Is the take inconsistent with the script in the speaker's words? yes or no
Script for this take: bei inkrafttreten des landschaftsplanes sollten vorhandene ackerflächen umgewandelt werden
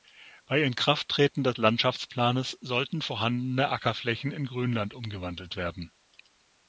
yes